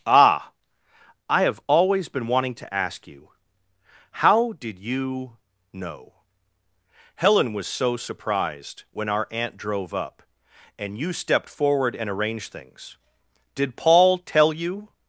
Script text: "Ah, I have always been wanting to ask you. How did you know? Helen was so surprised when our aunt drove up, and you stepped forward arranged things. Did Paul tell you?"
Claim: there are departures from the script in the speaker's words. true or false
true